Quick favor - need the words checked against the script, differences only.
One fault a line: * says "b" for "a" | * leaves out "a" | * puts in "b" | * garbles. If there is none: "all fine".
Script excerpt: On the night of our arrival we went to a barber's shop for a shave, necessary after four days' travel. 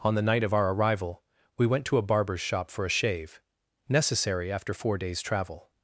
all fine